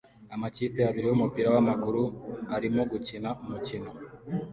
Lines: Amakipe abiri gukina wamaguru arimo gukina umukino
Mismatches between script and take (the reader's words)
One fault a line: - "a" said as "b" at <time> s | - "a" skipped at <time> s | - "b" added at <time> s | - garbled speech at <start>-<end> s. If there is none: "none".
- "gukina" said as "yumupira" at 1.1 s